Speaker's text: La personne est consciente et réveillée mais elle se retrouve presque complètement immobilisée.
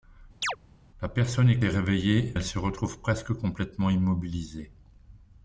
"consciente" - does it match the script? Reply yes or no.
no